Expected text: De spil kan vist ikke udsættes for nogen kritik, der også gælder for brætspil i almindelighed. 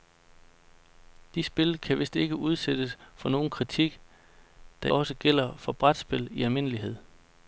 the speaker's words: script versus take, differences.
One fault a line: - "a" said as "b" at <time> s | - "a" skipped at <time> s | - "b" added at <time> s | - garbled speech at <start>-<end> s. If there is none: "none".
none